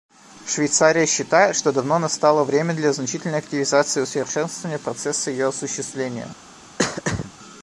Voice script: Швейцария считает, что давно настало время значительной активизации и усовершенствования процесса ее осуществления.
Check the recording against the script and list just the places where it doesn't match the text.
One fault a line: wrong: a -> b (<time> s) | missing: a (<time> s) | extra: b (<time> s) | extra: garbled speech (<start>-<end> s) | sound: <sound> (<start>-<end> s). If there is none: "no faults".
extra: для (2.7 s)
sound: throat clearing (6.8-7.3 s)